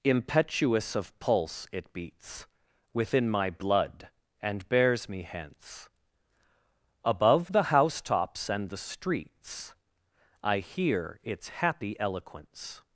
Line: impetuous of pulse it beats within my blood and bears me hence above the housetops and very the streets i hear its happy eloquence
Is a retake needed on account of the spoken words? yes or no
yes